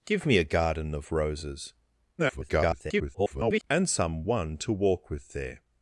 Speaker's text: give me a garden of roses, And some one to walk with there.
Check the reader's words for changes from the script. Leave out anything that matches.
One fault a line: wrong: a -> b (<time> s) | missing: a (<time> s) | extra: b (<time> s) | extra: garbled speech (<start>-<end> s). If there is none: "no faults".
extra: garbled speech (2.2-3.6 s)